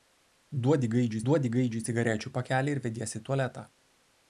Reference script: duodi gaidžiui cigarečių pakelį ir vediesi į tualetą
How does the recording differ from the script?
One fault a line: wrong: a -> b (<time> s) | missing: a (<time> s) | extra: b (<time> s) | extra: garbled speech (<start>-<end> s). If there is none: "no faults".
extra: duodi gaidžiui (1.3 s)